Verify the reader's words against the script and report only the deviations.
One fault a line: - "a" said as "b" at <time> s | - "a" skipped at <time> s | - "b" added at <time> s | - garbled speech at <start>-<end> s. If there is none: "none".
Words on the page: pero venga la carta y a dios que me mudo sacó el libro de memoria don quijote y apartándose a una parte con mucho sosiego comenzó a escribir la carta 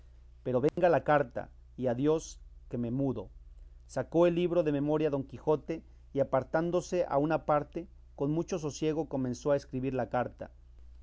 none